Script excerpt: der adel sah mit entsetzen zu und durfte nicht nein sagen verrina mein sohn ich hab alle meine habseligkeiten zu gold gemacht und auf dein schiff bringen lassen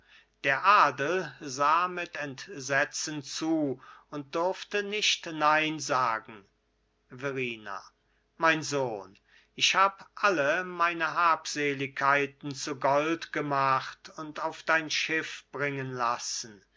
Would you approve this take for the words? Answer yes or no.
yes